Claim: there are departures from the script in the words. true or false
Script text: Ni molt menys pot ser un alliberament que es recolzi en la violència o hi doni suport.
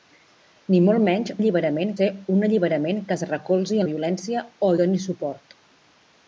true